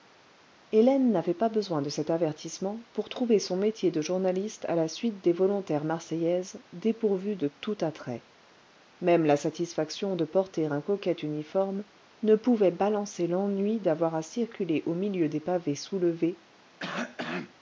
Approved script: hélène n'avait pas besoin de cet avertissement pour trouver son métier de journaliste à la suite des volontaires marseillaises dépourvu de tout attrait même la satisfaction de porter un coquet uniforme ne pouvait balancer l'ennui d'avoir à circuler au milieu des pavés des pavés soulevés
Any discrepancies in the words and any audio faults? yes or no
yes